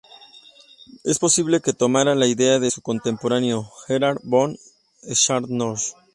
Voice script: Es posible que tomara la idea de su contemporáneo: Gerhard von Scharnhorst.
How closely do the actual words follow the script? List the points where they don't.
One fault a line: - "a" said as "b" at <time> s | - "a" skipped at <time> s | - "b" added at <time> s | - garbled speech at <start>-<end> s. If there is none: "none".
none